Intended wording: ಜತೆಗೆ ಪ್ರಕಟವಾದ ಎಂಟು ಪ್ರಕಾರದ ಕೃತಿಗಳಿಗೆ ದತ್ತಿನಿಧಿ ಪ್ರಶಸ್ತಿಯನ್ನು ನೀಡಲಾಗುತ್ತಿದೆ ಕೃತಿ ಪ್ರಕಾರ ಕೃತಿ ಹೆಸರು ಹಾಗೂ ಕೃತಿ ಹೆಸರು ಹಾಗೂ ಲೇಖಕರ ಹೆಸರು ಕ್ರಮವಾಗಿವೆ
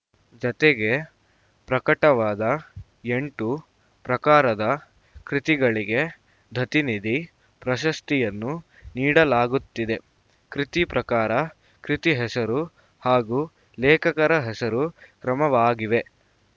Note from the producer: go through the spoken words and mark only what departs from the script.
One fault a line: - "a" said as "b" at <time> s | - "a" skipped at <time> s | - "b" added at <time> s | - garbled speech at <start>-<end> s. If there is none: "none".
- "ಕೃತಿ ಹೆಸರು ಹಾಗೂ" skipped at 13.4 s